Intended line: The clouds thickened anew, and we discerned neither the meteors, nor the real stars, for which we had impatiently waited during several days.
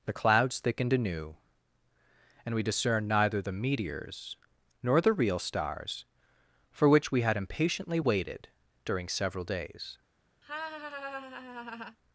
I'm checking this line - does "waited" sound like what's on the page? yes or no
yes